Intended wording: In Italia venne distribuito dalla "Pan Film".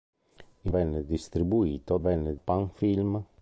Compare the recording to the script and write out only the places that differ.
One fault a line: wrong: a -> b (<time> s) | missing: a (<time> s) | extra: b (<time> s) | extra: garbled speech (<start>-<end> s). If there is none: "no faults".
missing: Italia (0.7 s)
wrong: dalla -> venne (2.0 s)